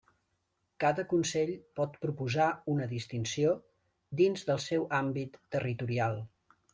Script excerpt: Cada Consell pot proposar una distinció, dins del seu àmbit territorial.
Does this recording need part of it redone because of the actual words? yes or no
no